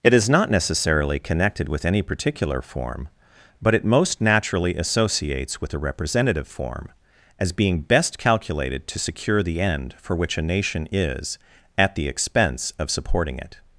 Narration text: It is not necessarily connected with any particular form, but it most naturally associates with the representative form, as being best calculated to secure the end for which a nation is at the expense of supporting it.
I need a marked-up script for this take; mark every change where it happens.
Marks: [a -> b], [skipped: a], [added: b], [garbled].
It is not necessarily connected with any particular form, but it most naturally associates with [the -> a] representative form, as being best calculated to secure the end for which a nation is at the expense of supporting it.